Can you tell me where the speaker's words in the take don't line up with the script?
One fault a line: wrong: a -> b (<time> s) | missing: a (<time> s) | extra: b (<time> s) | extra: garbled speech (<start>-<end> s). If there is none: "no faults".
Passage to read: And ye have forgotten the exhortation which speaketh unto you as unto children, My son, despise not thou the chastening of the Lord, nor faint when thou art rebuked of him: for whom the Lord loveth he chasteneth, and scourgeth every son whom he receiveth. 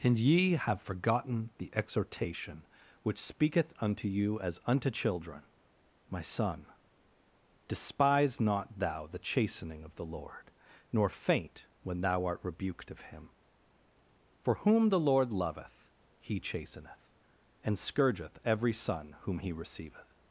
no faults